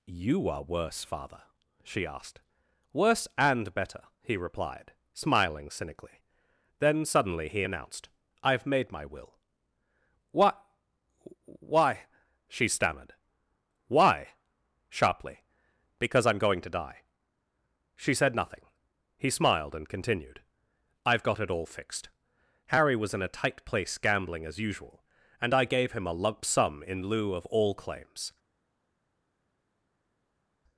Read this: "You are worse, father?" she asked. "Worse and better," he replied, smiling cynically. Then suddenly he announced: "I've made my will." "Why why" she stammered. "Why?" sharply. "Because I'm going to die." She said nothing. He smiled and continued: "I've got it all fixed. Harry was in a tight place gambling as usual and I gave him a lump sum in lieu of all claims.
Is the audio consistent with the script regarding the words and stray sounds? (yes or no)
no